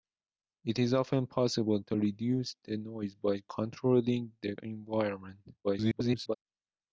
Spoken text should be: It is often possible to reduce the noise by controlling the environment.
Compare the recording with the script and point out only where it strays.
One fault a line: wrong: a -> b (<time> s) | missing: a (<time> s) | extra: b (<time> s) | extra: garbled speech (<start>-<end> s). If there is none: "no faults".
extra: garbled speech (5.6-6.3 s)